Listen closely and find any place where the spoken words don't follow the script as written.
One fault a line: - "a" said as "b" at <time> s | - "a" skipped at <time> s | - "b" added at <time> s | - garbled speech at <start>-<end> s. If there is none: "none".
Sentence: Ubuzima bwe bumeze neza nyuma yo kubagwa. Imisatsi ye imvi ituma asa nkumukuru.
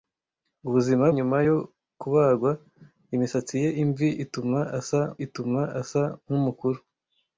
- "bwe bumeze neza" skipped at 1.1 s
- "ituma asa" added at 5.3 s